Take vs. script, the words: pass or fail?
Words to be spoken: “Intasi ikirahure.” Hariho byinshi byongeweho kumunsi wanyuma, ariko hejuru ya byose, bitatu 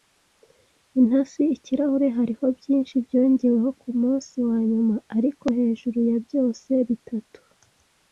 pass